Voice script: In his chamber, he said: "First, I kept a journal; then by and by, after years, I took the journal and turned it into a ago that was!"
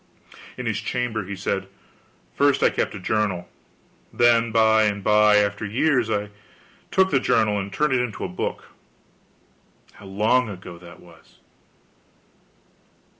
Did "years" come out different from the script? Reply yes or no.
no